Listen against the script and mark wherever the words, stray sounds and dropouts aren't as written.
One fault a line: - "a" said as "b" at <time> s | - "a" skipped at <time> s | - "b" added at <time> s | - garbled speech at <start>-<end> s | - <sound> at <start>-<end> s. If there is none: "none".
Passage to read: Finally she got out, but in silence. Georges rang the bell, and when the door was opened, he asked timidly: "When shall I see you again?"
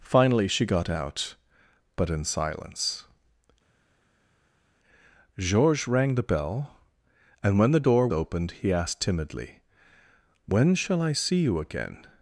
- "was" skipped at 8.1 s